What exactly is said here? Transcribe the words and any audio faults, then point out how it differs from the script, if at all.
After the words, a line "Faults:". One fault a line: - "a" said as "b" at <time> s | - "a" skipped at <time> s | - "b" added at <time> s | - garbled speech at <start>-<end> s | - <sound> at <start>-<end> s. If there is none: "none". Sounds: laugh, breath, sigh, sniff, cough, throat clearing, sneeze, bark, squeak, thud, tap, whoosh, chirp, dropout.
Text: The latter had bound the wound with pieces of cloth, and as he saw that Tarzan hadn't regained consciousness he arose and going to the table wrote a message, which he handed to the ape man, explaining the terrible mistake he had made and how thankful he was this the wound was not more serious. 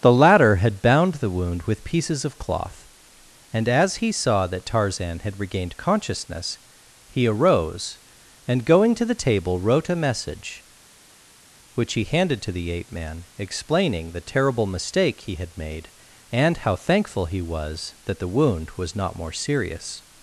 The latter had bound the wound with pieces of cloth, and as he saw that Tarzan had regained consciousness he arose and going to the table wrote a message, which he handed to the ape man, explaining the terrible mistake he had made and how thankful he was that the wound was not more serious.
Faults:
- "hadn't" said as "had" at 5.2 s
- "this" said as "that" at 18.0 s